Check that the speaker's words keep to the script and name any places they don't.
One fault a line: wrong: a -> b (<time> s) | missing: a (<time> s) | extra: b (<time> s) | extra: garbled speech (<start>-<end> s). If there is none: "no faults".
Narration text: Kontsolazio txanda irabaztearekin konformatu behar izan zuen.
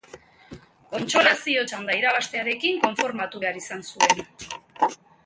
no faults